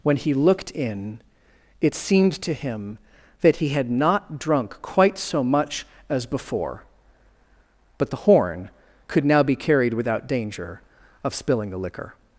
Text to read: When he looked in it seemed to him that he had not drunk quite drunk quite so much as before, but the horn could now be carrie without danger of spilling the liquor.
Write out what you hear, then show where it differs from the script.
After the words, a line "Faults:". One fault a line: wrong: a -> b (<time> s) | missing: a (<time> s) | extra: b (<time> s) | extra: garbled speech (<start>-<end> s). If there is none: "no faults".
When he looked in it seemed to him that he had not drunk quite so much as before, but the horn could now be carried without danger of spilling the liquor.
Faults:
missing: drunk quite (5.2 s)
wrong: carrie -> carried (9.6 s)